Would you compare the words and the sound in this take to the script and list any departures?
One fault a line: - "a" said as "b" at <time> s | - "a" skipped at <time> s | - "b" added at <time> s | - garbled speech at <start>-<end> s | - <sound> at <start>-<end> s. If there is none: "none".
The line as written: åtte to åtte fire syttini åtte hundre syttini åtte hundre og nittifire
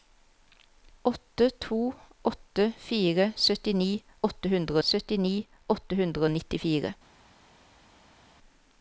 none